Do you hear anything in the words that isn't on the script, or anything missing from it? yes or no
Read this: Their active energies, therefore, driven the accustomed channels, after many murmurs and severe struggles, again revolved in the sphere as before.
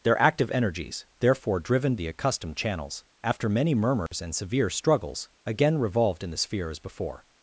no